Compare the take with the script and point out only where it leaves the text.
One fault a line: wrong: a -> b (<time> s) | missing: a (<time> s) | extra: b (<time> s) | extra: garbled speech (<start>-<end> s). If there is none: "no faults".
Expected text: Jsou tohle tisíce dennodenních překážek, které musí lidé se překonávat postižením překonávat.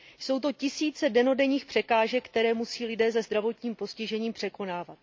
wrong: tohle -> to (0.4 s)
wrong: překonávat -> zdravotním (3.2 s)